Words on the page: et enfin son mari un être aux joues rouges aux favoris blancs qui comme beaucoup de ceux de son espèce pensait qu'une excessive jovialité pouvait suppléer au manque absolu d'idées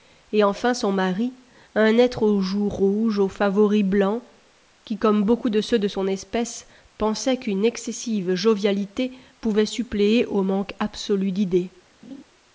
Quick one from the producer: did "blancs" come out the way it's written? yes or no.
yes